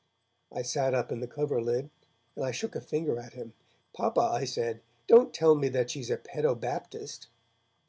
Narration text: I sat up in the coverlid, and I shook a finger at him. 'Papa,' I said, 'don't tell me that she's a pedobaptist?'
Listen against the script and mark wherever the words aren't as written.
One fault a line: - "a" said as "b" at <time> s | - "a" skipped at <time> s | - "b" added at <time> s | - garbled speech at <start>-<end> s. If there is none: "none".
none